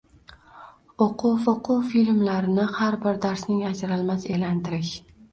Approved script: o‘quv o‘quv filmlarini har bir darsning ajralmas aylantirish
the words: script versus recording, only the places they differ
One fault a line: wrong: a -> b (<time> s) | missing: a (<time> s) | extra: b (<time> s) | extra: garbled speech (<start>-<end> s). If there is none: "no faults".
no faults